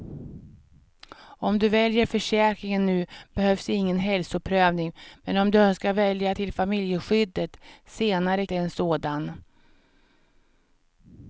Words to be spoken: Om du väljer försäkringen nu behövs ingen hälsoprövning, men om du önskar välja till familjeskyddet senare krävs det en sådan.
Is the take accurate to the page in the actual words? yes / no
no